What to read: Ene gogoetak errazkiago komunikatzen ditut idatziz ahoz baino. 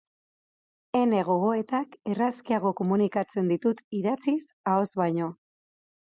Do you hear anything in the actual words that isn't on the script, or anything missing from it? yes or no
no